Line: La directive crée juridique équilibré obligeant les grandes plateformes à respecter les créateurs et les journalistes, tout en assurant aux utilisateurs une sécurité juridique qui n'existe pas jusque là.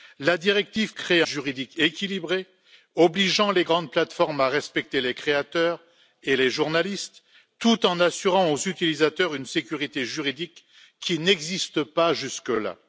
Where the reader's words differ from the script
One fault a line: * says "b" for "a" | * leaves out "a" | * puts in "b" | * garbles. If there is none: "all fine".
all fine